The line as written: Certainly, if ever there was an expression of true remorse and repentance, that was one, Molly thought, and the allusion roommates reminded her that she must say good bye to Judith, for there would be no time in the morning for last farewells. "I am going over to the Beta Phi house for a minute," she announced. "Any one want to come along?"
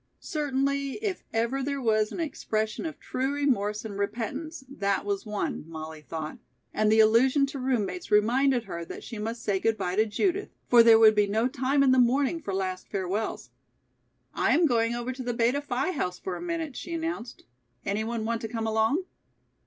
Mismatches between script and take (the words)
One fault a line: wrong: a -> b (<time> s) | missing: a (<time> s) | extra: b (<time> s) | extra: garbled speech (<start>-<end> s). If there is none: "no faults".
extra: to (7.5 s)